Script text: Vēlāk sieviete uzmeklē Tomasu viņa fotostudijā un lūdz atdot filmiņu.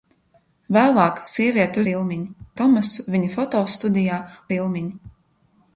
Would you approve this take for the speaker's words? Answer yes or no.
no